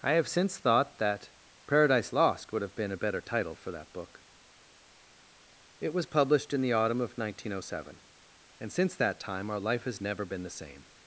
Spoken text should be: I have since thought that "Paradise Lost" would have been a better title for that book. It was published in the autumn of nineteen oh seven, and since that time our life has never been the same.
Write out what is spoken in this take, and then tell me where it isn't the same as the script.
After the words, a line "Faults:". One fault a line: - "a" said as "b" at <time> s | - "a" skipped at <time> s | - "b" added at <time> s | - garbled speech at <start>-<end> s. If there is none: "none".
I have since thought that "Paradise Lost" would have been a better title for that book. It was published in the autumn of nineteen oh seven, and since that time our life has never been the same.
Faults:
none